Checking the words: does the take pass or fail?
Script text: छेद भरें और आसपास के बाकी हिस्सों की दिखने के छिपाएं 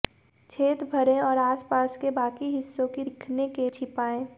pass